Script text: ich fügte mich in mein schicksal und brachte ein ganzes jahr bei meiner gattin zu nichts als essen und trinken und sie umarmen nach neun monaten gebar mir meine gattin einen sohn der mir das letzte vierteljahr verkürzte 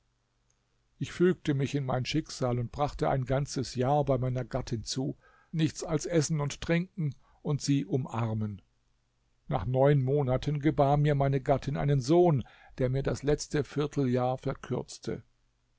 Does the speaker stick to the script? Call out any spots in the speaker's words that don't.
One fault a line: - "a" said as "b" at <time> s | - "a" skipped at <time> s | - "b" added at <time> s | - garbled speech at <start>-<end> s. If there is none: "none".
none